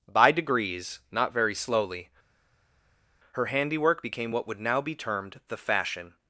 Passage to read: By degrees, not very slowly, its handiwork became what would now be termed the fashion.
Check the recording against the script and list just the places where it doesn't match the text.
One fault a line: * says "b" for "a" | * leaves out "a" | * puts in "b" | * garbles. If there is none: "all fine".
* says "her" for "its"